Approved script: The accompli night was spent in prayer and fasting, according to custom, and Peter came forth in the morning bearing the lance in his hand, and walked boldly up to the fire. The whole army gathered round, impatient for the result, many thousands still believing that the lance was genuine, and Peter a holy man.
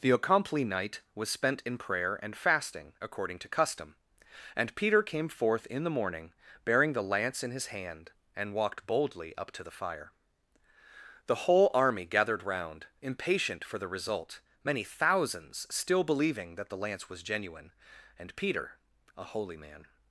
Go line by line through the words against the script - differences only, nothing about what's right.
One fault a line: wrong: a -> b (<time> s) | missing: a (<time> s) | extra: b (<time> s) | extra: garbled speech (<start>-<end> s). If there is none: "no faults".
no faults